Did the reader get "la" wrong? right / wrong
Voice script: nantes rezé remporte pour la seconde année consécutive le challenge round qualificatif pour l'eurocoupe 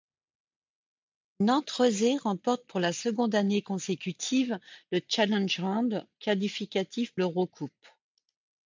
right